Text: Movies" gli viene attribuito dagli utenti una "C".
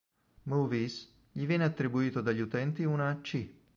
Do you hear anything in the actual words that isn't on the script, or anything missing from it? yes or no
no